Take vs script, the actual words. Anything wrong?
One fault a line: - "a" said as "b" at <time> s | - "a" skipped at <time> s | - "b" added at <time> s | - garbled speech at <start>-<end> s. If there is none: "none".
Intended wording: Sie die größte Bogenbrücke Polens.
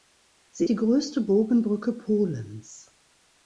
none